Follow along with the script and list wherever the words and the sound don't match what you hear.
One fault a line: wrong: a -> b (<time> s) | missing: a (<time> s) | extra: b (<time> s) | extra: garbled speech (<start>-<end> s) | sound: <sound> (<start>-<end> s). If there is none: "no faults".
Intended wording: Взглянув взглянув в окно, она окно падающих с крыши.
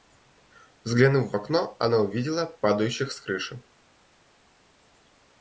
missing: взглянув (1.3 s)
wrong: окно -> увидела (2.0 s)